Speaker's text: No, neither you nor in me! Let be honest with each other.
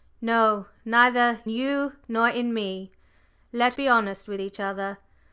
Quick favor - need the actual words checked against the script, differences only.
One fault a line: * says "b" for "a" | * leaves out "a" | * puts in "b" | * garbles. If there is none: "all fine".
all fine